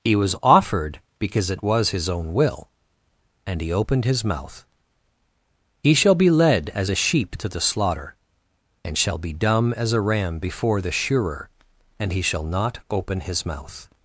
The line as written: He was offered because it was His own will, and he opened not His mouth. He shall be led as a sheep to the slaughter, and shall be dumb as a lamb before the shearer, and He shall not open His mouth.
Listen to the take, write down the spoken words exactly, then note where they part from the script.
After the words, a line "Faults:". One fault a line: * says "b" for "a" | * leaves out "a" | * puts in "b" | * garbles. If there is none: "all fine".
He was offered because it was His own will, and he opened His mouth. He shall be led as a sheep to the slaughter, and shall be dumb as a ram before the shearer, and He shall not open His mouth.
Faults:
* leaves out "not"
* says "ram" for "lamb"